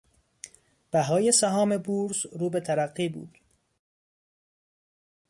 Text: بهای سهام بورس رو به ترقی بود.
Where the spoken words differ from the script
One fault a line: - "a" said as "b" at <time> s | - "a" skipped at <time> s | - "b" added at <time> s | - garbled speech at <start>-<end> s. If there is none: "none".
none